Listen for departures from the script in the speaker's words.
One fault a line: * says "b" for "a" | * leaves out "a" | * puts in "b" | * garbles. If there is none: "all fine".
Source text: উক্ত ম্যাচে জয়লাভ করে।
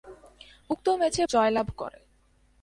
all fine